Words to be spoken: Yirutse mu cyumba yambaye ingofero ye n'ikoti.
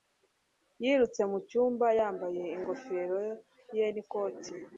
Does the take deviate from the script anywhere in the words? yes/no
no